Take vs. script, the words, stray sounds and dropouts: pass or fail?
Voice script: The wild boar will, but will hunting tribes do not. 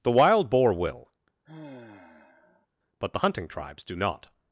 fail